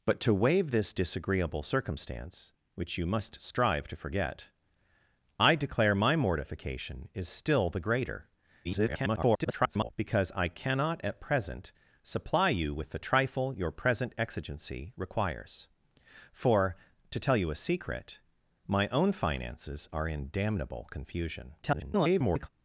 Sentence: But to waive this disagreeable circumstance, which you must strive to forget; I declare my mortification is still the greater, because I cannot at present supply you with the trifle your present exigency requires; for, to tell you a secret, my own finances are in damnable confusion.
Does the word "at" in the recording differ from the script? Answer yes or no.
no